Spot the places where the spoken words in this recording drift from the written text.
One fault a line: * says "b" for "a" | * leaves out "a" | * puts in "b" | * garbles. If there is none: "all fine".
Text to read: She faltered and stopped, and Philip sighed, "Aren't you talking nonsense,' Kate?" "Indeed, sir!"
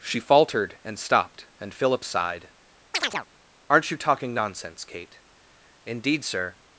all fine